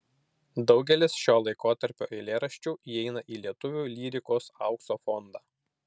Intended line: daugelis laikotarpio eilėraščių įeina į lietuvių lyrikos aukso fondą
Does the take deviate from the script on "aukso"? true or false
false